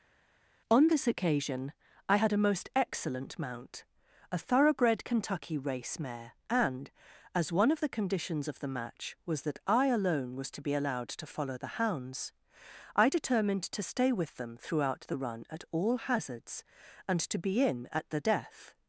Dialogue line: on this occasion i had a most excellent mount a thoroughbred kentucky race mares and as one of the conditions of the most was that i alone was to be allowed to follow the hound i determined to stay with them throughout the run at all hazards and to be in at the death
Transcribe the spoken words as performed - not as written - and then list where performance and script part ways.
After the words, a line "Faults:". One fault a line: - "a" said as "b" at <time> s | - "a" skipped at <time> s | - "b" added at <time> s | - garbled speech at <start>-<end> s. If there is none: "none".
on this occasion i had a most excellent mount a thoroughbred kentucky race mare and as one of the conditions of the match was that i alone was to be allowed to follow the hounds i determined to stay with them throughout the run at all hazards and to be in at the death
Faults:
- "mares" said as "mare" at 6.0 s
- "most" said as "match" at 8.7 s
- "hound" said as "hounds" at 11.8 s